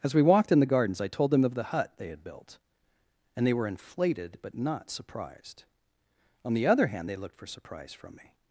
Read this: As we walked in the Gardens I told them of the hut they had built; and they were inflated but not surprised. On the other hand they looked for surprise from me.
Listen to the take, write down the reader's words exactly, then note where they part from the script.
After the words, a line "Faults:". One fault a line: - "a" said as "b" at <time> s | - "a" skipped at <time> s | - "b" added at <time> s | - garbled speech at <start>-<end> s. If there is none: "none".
As we walked in the Gardens I told them of the hut they had built; and they were inflated but not surprised. On the other hand they looked for surprise from me.
Faults:
none